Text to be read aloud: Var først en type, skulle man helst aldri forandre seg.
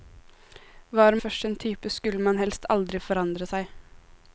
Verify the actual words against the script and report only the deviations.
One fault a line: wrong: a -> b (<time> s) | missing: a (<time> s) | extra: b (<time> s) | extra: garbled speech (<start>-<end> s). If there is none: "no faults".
no faults